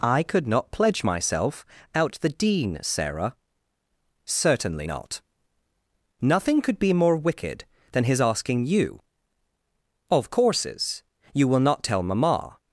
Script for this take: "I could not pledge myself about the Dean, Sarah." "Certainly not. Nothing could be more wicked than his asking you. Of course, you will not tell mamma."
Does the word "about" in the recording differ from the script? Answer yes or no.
yes